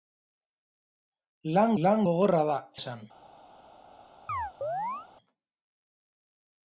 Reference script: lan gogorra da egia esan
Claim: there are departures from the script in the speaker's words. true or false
true